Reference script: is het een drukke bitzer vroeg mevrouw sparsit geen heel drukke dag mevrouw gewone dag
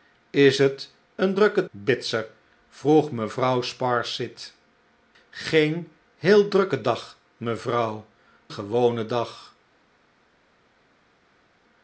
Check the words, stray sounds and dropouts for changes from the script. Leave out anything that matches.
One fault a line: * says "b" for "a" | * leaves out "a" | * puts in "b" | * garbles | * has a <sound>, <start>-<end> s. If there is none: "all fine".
all fine